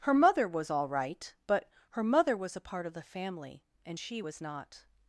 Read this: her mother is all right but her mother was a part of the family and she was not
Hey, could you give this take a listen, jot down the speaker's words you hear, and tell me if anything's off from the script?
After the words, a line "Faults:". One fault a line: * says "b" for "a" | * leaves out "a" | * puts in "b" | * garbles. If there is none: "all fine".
her mother was all right but her mother was a part of the family and she was not
Faults:
* says "was" for "is"